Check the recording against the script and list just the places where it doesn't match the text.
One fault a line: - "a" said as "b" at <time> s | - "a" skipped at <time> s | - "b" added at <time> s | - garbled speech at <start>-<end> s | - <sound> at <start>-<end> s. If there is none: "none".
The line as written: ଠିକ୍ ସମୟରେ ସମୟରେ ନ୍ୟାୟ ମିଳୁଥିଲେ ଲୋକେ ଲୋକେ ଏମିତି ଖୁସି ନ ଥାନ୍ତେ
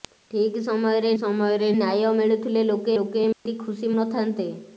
- dropout at 3.3-3.5 s